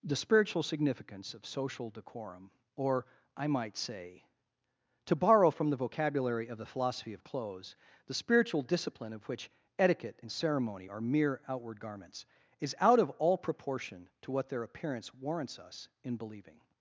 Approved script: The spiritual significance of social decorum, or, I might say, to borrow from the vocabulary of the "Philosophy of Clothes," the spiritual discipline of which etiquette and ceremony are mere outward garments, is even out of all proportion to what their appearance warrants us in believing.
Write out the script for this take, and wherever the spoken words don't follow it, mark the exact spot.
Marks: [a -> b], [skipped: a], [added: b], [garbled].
The spiritual significance of social decorum, or, I might say, to borrow from the vocabulary of the "Philosophy of Clothes," the spiritual discipline of which etiquette and ceremony are mere outward garments, is [skipped: even] out of all proportion to what their appearance warrants us in believing.